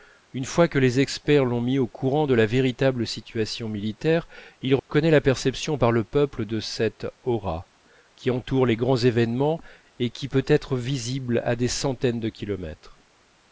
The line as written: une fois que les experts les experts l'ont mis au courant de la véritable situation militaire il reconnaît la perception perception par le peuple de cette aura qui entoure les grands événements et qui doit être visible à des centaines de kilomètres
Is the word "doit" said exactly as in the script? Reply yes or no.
no